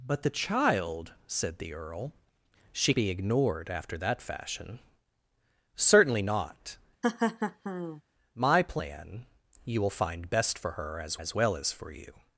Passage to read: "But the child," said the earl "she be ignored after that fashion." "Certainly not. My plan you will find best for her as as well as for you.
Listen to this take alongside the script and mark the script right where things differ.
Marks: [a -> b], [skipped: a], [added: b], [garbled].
"But the child," said the earl "she be ignored after that fashion." "Certainly not. My plan you will find best for her as as well as for you.